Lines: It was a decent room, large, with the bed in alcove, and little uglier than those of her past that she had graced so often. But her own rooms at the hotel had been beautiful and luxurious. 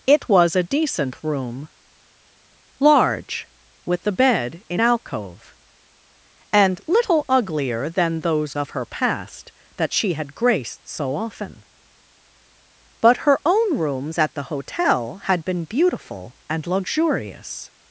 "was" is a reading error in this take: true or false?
false